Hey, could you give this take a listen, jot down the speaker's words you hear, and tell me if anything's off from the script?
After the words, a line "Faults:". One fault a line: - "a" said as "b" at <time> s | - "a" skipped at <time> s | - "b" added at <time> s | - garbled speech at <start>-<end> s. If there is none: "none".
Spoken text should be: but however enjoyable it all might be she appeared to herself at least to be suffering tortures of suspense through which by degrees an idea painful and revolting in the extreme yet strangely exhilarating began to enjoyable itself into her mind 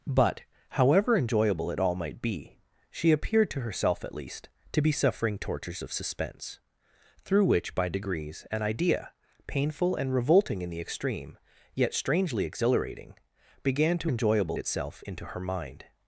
but however enjoyable it all might be she appeared to herself at least to be suffering tortures of suspense through which by degrees an idea painful and revolting in the extreme yet strangely exhilarating began to enjoyable itself into her mind
Faults:
none